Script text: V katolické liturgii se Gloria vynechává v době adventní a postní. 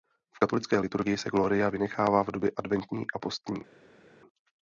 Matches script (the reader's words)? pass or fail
pass